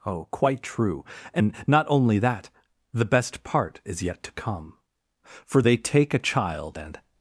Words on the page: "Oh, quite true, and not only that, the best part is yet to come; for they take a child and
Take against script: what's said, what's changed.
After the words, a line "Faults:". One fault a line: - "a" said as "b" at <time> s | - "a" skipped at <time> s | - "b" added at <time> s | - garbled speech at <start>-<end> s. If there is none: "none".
"Oh, quite true, and not only that, the best part is yet to come; for they take a child and
Faults:
none